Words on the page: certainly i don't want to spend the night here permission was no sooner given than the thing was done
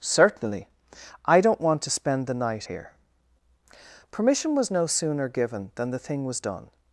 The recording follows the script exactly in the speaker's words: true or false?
true